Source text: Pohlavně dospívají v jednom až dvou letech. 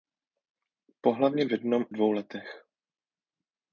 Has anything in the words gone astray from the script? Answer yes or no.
yes